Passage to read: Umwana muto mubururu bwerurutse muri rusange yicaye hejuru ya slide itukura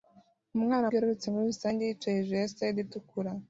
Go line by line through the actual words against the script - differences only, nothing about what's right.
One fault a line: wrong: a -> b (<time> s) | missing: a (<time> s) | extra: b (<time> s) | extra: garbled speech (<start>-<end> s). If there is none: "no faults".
missing: muto mubururu (0.9 s)